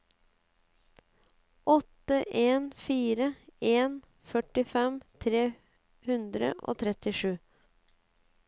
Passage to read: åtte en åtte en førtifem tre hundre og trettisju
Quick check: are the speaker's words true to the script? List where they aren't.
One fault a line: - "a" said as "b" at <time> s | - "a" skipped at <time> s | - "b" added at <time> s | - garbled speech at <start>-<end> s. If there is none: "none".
- "åtte" said as "fire" at 2.9 s